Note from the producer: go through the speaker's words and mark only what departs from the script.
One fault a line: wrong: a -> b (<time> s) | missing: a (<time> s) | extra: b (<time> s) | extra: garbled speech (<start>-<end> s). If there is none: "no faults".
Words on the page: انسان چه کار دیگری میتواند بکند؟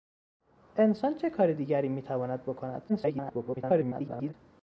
extra: garbled speech (2.9-4.3 s)